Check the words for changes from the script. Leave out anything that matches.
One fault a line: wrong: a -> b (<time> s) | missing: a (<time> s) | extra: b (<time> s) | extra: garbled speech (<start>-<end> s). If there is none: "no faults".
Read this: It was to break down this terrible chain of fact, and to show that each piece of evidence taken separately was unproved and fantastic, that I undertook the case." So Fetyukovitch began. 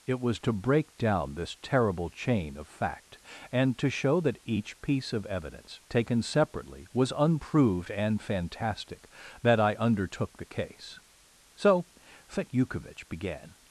no faults